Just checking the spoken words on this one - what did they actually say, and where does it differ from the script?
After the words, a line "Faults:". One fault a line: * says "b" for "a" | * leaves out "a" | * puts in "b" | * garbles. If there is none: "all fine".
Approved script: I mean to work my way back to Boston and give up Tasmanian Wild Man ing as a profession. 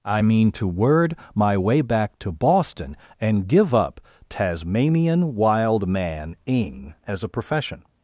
I mean to word my way back to Boston and give up Tasmanian Wild Man ing as a profession.
Faults:
* says "word" for "work"